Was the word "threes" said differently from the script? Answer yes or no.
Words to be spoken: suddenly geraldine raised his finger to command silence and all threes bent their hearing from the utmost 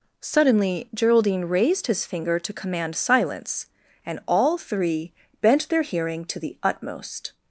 yes